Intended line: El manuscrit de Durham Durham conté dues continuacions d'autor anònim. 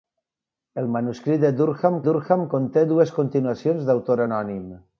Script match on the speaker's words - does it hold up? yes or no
yes